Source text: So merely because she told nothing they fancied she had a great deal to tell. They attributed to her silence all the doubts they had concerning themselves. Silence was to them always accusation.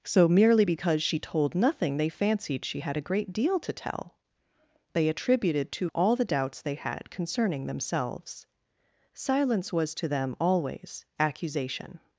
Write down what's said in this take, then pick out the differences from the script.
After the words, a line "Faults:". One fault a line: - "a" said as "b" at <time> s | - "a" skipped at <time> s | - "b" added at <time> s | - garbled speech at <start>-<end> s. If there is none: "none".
So merely because she told nothing they fancied she had a great deal to tell. They attributed to all the doubts they had concerning themselves. Silence was to them always accusation.
Faults:
- "her silence" skipped at 5.9 s